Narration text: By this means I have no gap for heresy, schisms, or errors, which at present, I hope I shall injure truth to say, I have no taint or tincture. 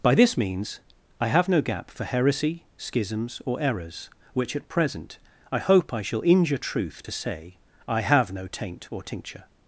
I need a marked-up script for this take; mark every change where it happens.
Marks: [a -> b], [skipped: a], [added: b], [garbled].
By this means I have no gap for heresy, schisms, or errors, which at present, I hope I shall injure truth to say, I have no taint or tincture.